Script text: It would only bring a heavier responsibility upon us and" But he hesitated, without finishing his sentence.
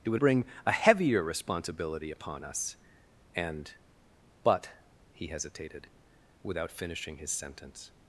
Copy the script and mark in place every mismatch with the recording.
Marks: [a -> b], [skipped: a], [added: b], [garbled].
It would [skipped: only] bring a heavier responsibility upon us and" But he hesitated, without finishing his sentence.